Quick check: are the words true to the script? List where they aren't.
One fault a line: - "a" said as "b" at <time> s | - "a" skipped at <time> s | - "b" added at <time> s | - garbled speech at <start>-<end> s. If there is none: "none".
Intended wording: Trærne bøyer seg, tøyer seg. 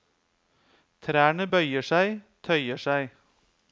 none